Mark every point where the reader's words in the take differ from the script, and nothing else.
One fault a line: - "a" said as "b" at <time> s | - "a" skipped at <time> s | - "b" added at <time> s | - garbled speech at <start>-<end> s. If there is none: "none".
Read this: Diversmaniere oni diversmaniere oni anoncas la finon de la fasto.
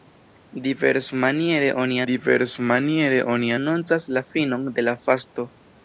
none